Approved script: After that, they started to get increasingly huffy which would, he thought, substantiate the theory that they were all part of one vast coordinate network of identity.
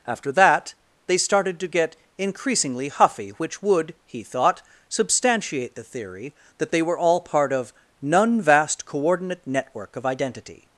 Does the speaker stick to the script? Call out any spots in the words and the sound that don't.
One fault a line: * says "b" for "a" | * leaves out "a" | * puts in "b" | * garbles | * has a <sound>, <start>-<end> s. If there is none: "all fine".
* says "none" for "one"